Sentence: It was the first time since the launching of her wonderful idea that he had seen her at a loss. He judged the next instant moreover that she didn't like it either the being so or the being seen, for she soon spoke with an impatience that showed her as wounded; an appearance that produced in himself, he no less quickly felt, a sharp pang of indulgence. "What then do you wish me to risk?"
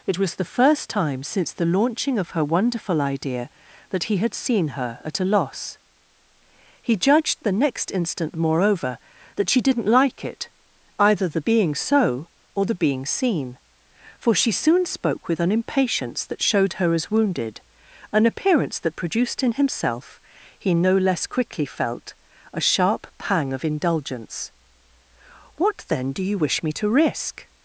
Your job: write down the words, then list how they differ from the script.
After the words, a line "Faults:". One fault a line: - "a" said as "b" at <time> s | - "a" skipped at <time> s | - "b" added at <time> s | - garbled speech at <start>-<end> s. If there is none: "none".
It was the first time since the launching of her wonderful idea that he had seen her at a loss. He judged the next instant moreover that she didn't like it either the being so or the being seen, for she soon spoke with an impatience that showed her as wounded; an appearance that produced in himself, he no less quickly felt, a sharp pang of indulgence. "What then do you wish me to risk?"
Faults:
none